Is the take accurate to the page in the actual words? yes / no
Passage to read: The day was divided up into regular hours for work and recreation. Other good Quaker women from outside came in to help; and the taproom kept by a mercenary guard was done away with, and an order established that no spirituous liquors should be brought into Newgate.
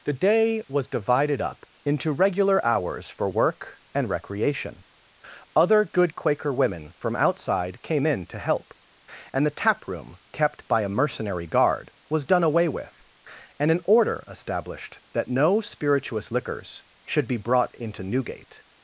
yes